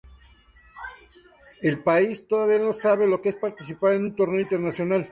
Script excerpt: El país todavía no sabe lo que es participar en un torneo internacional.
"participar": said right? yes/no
yes